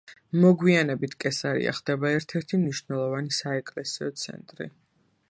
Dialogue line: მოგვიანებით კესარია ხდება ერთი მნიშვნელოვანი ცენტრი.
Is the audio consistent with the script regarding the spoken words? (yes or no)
no